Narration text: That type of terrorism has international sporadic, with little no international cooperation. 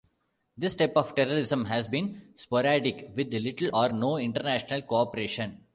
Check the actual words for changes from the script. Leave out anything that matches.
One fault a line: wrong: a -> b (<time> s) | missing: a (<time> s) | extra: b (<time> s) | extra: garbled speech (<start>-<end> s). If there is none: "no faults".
wrong: That -> This (0.6 s)
wrong: international -> been (1.9 s)
extra: or (3.7 s)